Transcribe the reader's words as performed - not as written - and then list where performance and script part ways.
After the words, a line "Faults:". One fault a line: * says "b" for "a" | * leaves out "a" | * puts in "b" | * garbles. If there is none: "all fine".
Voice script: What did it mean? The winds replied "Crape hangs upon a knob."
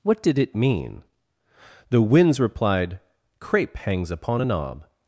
What did it mean? The winds replied "Crape hangs upon a knob."
Faults:
all fine